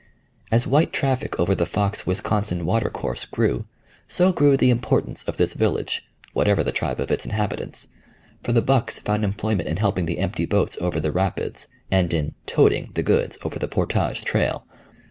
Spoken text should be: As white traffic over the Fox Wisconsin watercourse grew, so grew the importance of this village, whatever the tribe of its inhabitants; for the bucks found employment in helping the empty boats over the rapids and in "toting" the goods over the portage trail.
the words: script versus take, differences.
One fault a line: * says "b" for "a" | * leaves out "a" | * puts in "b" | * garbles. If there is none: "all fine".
all fine